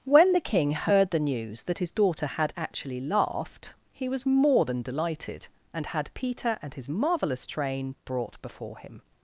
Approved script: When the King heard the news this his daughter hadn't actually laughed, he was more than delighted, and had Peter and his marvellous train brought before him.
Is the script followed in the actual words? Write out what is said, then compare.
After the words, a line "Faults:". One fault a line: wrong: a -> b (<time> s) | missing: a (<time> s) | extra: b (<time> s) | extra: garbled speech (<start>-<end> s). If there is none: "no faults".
When the King heard the news that his daughter had actually laughed, he was more than delighted, and had Peter and his marvellous train brought before him.
Faults:
wrong: this -> that (1.6 s)
wrong: hadn't -> had (2.2 s)